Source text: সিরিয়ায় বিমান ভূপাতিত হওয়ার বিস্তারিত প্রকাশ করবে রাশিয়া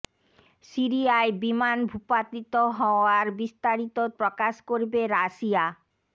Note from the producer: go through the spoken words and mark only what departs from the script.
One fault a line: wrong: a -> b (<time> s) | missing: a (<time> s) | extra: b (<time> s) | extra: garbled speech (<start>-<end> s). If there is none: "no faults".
no faults